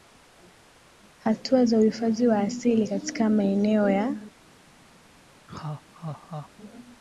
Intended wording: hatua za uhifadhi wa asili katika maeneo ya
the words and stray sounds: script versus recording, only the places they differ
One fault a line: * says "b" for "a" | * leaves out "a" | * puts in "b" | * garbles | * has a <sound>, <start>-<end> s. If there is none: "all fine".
* has a laugh, 5.5-6.5 s